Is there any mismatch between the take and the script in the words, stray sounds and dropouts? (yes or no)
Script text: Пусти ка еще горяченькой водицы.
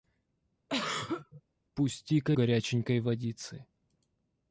yes